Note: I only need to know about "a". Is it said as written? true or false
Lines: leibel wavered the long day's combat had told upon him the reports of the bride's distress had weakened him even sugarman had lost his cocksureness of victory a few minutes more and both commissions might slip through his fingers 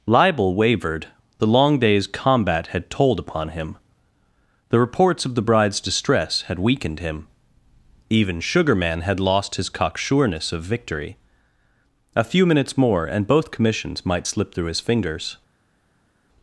true